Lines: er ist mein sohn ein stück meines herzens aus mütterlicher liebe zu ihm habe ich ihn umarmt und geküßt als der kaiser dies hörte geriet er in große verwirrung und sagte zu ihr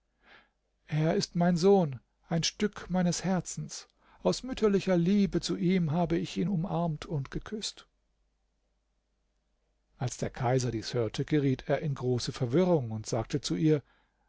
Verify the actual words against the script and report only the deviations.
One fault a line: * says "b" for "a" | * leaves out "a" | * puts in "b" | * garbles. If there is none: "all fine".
all fine